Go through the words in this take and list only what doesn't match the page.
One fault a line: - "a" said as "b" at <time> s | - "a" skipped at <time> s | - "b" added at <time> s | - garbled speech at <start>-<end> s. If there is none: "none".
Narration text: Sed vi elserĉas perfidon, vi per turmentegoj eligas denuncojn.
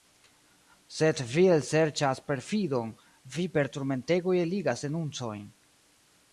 none